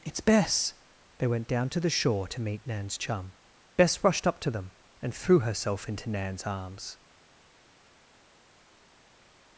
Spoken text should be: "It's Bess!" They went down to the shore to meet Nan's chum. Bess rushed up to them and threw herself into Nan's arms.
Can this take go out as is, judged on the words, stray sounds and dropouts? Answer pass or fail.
pass